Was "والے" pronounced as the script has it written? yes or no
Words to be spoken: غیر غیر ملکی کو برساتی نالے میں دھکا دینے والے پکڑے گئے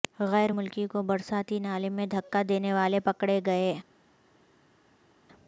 yes